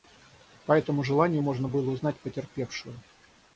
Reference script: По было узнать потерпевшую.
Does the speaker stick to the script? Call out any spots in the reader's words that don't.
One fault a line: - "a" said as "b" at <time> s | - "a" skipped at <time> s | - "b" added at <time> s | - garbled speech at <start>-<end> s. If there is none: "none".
- "этому желанию можно" added at 0.7 s